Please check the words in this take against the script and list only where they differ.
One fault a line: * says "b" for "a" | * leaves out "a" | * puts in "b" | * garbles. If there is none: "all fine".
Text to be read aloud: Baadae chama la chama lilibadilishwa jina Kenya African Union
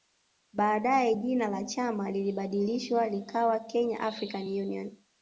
* says "jina" for "chama"
* says "likawa" for "jina"